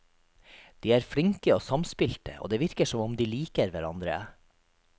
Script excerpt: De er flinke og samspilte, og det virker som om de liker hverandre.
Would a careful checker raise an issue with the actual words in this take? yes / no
no